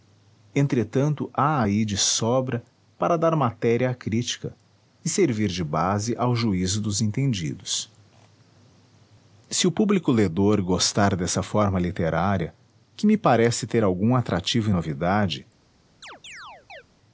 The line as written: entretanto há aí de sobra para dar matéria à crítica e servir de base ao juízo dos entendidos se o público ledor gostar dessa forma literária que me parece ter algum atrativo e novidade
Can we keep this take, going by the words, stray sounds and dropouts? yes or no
no